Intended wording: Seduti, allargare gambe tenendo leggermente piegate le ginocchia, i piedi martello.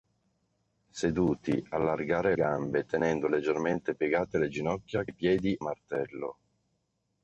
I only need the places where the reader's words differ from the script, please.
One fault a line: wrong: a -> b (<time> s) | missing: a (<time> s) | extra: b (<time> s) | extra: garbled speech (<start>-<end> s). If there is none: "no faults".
no faults